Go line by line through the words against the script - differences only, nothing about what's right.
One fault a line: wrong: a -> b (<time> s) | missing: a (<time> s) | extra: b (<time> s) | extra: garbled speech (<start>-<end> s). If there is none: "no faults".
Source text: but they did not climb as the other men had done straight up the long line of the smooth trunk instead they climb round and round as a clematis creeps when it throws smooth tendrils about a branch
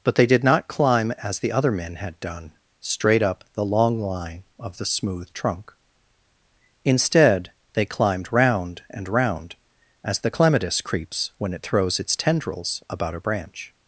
wrong: climb -> climbed (7.8 s)
wrong: a -> the (10.2 s)
wrong: smooth -> its (12.0 s)